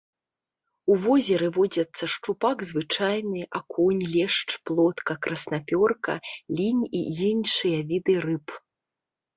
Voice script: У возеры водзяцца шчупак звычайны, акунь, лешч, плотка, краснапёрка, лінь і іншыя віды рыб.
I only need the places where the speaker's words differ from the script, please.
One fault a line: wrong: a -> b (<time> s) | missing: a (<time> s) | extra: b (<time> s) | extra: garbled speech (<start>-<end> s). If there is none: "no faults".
no faults